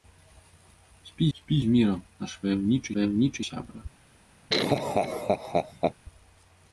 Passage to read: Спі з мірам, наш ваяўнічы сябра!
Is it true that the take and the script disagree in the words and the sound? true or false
true